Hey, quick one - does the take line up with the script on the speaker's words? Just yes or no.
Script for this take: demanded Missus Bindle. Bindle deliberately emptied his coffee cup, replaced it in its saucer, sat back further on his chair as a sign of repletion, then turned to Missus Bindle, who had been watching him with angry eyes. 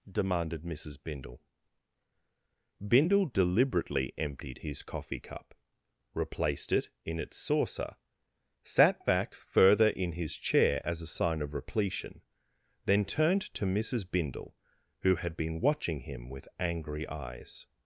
no